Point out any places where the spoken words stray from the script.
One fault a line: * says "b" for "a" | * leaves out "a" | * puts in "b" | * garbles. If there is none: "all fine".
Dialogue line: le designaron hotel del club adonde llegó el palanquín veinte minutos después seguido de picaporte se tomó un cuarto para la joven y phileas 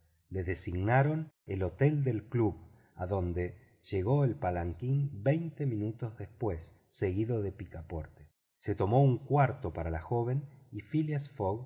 * puts in "el"